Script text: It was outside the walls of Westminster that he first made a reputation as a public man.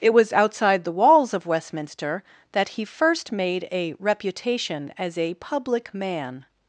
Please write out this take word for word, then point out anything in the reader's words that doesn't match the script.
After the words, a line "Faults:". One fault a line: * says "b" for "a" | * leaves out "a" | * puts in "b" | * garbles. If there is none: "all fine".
It was outside the walls of Westminster that he first made a reputation as a public man.
Faults:
all fine